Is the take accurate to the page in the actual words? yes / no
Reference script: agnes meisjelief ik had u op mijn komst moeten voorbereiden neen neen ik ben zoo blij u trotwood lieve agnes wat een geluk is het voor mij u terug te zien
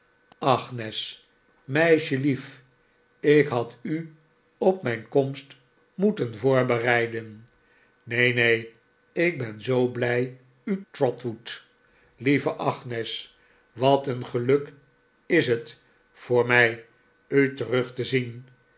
yes